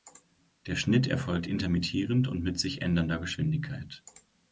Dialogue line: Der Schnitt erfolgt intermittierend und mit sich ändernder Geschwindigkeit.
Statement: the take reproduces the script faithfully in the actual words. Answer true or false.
true